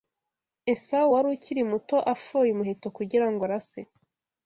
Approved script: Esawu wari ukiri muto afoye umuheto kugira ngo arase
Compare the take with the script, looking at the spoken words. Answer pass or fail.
pass